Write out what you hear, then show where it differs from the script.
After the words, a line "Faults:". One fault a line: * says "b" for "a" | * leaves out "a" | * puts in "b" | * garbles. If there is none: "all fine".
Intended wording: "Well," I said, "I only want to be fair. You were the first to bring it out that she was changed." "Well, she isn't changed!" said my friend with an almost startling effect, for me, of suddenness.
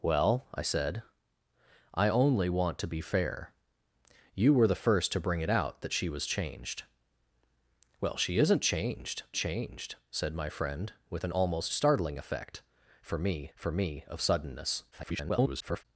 "Well," I said, "I only want to be fair. You were the first to bring it out that she was changed." "Well, she isn't changed changed!" said my friend with an almost startling effect, for me for me, of suddenness. [garbled]
Faults:
* puts in "changed"
* puts in "for me"
* garbles